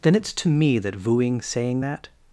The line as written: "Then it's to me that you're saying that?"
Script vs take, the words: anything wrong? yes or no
yes